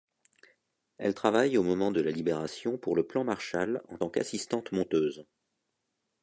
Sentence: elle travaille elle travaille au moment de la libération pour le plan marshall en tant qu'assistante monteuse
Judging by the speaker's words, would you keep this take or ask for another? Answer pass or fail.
fail